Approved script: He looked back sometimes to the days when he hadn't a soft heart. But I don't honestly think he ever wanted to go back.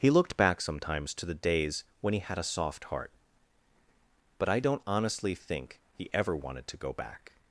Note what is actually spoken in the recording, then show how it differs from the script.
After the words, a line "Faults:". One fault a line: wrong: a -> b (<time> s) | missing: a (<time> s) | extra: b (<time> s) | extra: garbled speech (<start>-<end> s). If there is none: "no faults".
He looked back sometimes to the days when he had a soft heart. But I don't honestly think he ever wanted to go back.
Faults:
wrong: hadn't -> had (2.2 s)